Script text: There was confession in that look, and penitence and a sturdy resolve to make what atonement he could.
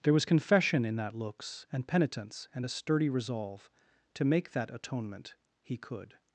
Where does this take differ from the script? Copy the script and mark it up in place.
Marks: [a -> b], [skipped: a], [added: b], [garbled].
There was confession in that [look, -> looks] and penitence and a sturdy resolve to make [what -> that] atonement he could.